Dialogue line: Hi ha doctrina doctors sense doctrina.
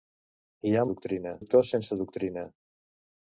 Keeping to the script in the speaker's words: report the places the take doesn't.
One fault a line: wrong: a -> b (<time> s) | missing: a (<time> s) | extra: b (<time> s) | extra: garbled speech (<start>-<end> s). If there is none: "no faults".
no faults